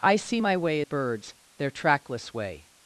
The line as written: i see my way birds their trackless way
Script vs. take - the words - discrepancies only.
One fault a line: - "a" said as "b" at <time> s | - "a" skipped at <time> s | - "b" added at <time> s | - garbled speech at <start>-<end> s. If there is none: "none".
none